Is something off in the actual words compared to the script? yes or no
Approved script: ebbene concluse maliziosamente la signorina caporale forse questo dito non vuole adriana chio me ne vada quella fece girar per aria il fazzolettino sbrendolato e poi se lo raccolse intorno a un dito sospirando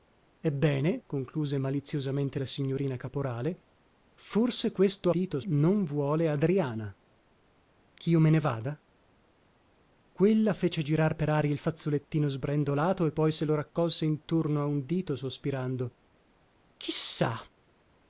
no